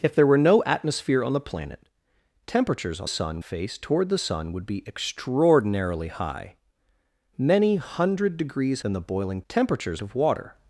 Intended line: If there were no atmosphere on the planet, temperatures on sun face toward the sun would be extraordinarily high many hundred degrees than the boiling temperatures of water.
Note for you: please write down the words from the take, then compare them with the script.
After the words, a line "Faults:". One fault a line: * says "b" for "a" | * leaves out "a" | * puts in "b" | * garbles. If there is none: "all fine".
If there were no atmosphere on the planet, temperatures on sun face toward the sun would be extraordinarily high many hundred degrees than the boiling temperatures of water.
Faults:
all fine